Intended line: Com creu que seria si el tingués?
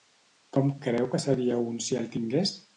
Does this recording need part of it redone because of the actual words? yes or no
yes